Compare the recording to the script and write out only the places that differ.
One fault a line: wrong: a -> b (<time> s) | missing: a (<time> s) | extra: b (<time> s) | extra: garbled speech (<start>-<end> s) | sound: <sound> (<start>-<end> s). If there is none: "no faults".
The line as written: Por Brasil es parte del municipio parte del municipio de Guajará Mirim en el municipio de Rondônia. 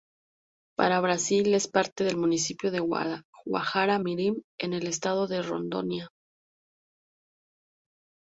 wrong: Por -> Para (0.8 s)
missing: parte del municipio (2.7 s)
wrong: municipio -> estado (4.8 s)